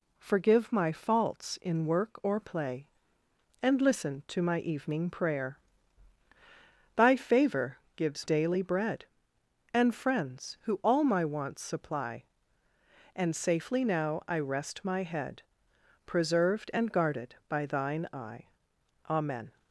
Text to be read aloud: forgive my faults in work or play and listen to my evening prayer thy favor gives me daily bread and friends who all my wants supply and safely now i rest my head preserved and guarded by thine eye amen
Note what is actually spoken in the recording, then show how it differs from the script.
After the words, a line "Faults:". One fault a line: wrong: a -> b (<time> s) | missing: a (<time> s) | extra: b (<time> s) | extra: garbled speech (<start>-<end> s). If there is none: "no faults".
forgive my faults in work or play and listen to my evening prayer thy favor gives daily bread and friends who all my wants supply and safely now i rest my head preserved and guarded by thine eye amen
Faults:
missing: me (8.3 s)